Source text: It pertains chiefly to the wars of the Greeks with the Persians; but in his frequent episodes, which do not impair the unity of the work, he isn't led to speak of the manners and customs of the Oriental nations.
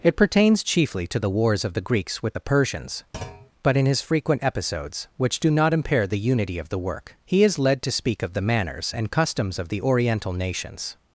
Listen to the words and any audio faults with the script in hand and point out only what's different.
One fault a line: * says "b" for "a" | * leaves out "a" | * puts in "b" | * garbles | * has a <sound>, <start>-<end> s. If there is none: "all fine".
* has a thud, 3.1-3.5 s
* says "is" for "isn't"